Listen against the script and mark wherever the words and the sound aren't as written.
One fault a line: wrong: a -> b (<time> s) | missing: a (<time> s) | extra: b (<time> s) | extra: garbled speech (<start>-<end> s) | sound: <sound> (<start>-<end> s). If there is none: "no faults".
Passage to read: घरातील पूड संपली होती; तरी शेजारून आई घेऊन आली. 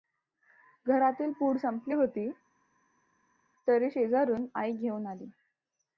no faults